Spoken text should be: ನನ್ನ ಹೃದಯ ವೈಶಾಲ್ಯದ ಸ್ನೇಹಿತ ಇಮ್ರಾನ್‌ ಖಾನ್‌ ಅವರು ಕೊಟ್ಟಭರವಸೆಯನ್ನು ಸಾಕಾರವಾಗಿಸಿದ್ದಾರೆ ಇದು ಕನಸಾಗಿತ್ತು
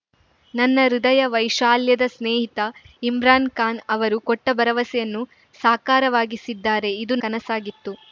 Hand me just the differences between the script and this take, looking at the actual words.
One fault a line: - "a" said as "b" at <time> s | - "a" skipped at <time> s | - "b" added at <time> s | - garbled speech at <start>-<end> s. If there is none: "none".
none